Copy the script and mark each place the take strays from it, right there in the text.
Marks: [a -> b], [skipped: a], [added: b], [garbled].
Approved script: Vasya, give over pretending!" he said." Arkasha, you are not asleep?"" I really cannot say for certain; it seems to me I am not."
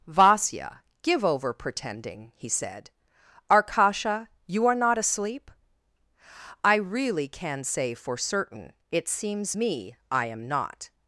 Vasya, give over pretending!" he said." Arkasha, you are not asleep?"" I really [cannot -> can] say for certain; it seems [skipped: to] me I am not."